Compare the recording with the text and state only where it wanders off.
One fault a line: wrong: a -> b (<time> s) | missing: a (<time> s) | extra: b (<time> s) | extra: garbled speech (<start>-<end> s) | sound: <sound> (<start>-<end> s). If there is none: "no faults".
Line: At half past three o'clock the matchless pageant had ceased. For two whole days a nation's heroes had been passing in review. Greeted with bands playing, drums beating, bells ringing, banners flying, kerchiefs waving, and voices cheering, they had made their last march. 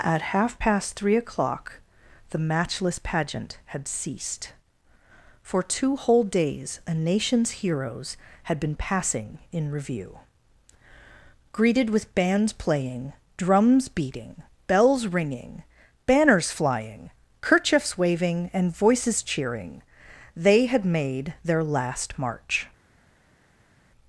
no faults